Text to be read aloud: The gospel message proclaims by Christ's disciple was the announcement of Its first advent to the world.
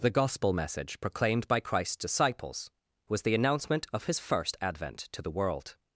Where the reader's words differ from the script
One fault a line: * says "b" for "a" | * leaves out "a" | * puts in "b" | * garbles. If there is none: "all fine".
* says "proclaimed" for "proclaims"
* says "disciples" for "disciple"
* says "His" for "Its"